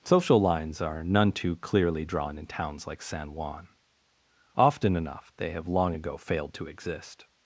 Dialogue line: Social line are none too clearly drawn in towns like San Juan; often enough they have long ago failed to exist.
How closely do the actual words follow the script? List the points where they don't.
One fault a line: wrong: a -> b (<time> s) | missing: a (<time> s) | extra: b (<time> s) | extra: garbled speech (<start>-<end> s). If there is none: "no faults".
wrong: line -> lines (0.4 s)